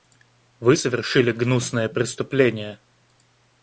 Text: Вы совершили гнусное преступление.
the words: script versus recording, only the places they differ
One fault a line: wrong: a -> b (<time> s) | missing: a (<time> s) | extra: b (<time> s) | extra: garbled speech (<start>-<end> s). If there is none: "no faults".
no faults